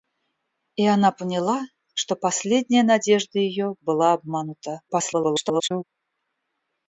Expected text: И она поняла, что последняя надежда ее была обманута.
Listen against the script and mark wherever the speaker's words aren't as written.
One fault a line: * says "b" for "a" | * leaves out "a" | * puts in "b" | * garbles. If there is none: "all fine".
* garbles